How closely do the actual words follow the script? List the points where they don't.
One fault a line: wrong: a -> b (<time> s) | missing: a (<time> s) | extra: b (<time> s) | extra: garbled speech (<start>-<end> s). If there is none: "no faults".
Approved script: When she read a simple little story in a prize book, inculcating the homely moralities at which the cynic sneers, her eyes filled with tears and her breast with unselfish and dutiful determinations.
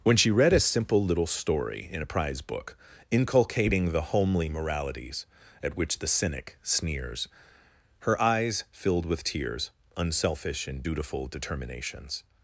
missing: and her breast with (9.7 s)